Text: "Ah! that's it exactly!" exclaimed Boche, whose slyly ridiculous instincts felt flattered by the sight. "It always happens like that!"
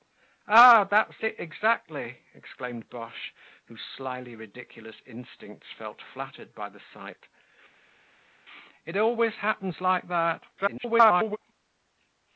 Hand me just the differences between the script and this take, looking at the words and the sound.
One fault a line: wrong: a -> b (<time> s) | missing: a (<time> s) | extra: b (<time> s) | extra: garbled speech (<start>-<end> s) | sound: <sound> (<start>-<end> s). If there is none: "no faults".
extra: garbled speech (10.5-11.4 s)